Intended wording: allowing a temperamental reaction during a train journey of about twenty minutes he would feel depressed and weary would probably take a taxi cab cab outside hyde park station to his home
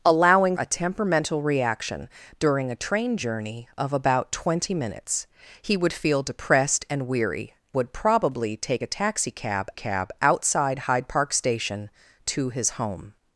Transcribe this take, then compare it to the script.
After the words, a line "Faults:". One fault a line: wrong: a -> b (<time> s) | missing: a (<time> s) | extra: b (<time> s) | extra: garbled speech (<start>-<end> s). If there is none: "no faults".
allowing a temperamental reaction during a train journey of about twenty minutes he would feel depressed and weary would probably take a taxi cab cab outside hyde park station to his home
Faults:
no faults